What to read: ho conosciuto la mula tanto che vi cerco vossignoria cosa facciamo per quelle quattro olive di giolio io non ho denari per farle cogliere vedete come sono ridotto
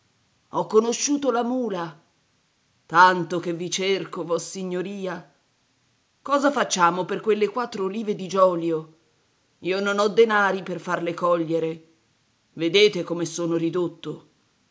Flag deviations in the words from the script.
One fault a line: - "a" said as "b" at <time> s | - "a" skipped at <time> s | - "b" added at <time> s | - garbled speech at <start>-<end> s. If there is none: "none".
none